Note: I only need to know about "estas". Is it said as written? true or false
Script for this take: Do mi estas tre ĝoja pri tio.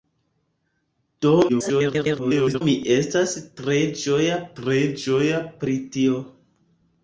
true